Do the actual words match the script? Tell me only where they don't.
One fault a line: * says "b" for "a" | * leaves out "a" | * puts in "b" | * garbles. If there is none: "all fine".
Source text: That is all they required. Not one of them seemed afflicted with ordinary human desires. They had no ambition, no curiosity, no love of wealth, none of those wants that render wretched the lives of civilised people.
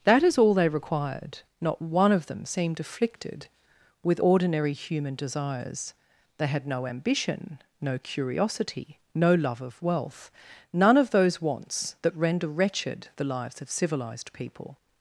all fine